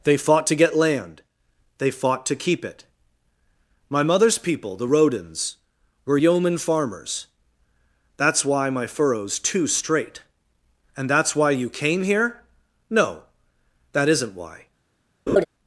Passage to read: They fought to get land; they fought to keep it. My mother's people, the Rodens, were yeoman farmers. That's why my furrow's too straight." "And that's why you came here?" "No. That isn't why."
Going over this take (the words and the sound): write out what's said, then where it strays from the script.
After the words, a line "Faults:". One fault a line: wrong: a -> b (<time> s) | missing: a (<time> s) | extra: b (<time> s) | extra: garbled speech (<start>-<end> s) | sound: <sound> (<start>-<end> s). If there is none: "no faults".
They fought to get land; they fought to keep it. My mother's people, the Rodens, were yeoman farmers. That's why my furrow's too straight." "And that's why you came here?" "No. That isn't why."
Faults:
sound: laugh (15.3-15.5 s)